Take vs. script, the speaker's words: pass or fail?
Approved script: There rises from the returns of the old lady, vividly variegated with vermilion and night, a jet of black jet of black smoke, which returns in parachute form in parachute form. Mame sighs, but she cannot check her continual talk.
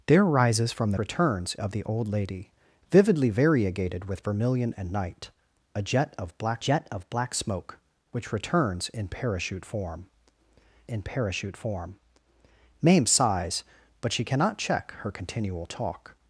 pass